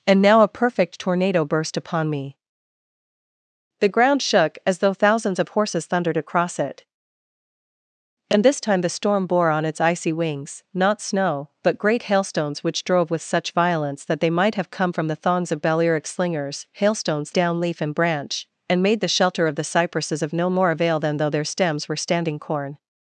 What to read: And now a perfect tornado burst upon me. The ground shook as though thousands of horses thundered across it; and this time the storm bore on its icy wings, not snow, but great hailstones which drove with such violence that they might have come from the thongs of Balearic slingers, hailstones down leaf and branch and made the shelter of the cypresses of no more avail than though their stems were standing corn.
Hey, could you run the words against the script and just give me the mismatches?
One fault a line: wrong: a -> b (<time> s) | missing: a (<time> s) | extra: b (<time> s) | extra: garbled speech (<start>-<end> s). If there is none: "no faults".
no faults